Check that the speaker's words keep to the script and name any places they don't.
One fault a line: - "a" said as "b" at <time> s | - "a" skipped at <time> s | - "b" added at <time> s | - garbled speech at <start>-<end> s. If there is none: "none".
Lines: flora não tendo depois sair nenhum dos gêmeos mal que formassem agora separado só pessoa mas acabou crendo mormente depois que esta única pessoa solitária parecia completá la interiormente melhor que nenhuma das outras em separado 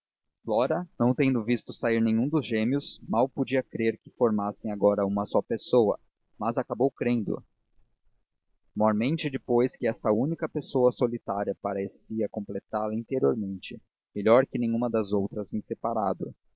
- "depois" said as "visto" at 1.4 s
- "podia crer" added at 3.3 s
- "separado" said as "uma" at 5.0 s